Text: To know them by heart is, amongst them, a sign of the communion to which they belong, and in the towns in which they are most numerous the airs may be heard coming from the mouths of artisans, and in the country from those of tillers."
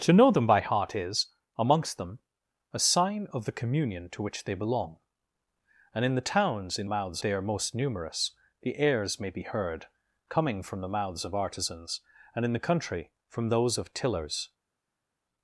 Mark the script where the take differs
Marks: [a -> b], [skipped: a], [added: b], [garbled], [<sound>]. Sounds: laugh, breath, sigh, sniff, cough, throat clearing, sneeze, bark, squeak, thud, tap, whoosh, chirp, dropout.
To know them by heart is, amongst them, a sign of the communion to which they belong, and in the towns in [which -> mouths] they are most numerous the airs may be heard coming from the mouths of artisans, and in the country from those of tillers."